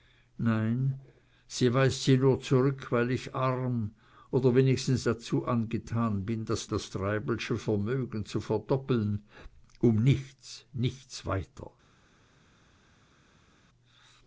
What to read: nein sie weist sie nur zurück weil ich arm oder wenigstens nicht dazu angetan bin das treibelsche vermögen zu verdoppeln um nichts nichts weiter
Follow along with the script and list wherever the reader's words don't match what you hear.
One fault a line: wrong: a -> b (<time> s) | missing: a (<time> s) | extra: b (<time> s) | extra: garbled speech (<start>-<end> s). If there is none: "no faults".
missing: nicht (5.0 s)
extra: das (6.6 s)